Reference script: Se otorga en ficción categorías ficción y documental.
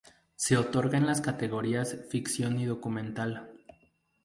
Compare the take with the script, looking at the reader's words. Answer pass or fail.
fail